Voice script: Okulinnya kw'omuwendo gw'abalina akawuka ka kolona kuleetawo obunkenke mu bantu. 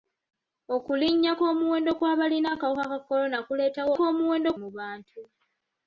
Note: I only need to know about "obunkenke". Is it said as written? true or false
false